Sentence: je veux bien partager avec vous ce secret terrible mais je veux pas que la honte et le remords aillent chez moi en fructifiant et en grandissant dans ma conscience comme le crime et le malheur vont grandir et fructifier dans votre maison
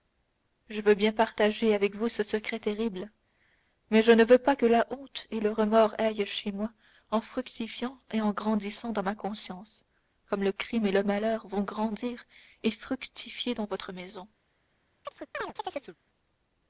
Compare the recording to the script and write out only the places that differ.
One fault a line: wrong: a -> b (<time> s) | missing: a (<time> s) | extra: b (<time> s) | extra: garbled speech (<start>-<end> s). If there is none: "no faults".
extra: ne (4.1 s)